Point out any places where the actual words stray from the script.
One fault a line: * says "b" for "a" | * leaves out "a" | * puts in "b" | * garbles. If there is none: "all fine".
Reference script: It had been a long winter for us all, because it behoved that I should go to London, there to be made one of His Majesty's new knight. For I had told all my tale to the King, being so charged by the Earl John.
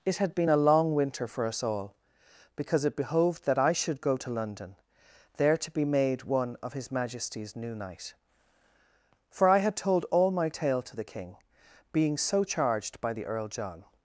all fine